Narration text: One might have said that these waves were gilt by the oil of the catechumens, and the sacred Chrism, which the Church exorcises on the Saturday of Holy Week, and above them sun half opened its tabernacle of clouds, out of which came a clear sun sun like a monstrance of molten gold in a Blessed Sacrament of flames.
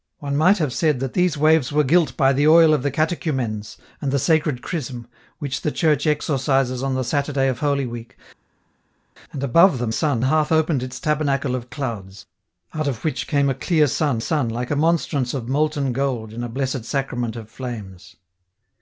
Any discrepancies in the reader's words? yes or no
no